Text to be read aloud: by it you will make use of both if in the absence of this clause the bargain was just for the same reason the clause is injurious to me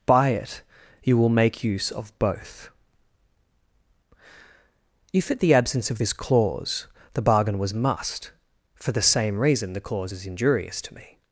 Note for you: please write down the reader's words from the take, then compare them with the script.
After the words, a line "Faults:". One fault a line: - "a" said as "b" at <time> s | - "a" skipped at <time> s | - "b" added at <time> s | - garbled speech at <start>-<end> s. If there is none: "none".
by it you will make use of both if at the absence of this clause the bargain was must for the same reason the clause is injurious to me
Faults:
- "in" said as "at" at 5.3 s
- "just" said as "must" at 7.7 s